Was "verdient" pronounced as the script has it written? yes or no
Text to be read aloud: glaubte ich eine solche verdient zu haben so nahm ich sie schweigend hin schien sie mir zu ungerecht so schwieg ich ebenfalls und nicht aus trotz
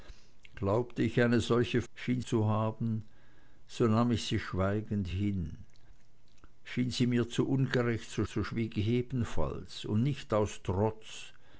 no